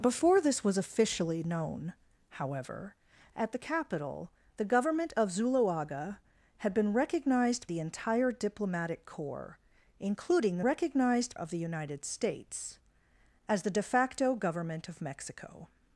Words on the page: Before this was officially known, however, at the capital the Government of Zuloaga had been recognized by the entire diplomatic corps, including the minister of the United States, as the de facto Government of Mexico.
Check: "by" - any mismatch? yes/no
yes